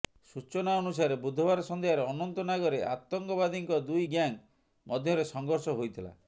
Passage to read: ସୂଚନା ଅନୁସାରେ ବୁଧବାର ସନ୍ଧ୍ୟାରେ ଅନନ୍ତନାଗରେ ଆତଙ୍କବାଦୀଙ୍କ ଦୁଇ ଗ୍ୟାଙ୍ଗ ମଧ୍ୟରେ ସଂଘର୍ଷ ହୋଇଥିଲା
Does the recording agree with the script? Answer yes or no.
yes